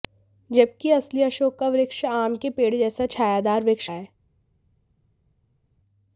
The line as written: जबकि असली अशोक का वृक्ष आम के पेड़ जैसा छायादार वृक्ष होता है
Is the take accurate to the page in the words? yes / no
no